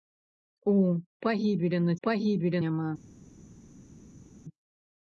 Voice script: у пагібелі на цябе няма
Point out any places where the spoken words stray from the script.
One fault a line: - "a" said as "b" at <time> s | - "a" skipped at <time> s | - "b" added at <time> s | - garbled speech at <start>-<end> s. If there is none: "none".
- "цябе" said as "пагібелі" at 2.1 s